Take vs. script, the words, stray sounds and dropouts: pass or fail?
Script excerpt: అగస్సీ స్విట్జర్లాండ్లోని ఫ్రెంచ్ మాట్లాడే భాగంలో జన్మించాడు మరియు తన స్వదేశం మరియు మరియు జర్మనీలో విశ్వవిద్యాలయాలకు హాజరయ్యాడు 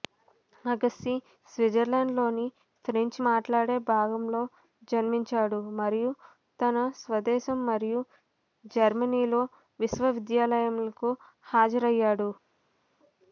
fail